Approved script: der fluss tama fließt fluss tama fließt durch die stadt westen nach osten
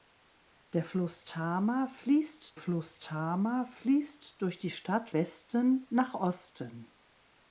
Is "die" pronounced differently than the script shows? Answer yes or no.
no